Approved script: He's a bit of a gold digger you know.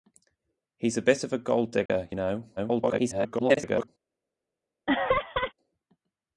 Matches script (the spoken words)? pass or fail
fail